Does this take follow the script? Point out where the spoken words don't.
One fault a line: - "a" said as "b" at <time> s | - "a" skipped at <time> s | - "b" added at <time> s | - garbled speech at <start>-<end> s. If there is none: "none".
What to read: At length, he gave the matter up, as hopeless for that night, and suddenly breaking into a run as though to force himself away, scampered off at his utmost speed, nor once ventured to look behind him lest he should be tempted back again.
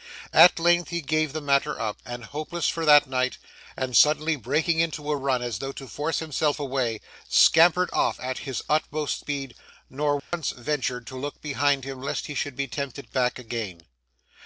none